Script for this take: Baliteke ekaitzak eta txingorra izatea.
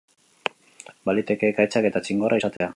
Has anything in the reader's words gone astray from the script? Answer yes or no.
no